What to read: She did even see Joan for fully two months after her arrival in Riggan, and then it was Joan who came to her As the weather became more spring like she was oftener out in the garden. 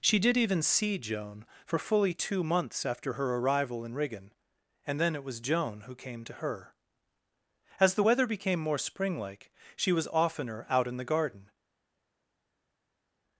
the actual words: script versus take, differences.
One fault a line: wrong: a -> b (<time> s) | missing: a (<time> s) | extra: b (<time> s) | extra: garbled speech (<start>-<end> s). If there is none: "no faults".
no faults